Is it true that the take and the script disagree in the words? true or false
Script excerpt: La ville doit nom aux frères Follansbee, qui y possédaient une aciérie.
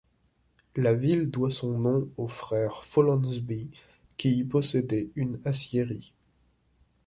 true